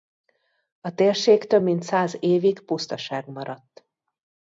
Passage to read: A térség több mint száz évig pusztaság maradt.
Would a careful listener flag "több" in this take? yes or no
no